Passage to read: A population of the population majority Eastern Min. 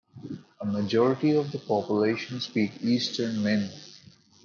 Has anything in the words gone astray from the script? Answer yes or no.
yes